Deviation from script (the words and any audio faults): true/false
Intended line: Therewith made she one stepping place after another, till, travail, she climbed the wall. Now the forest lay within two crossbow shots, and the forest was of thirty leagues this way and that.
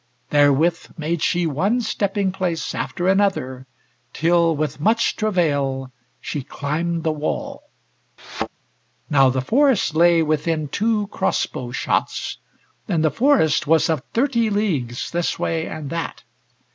true